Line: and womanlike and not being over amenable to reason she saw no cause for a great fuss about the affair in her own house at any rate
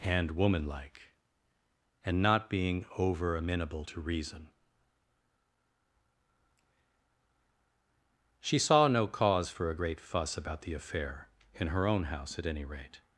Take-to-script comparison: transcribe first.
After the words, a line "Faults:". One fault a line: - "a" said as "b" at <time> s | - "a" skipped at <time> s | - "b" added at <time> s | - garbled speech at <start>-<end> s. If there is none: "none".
and womanlike and not being over amenable to reason she saw no cause for a great fuss about the affair in her own house at any rate
Faults:
none